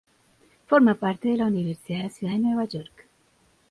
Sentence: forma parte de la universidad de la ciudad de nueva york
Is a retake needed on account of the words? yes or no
no